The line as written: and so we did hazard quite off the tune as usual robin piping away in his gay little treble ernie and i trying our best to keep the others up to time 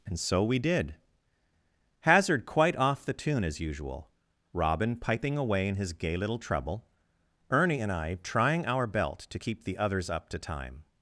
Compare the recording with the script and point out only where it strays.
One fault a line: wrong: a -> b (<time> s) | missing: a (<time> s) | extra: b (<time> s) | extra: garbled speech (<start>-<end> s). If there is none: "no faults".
wrong: best -> belt (8.9 s)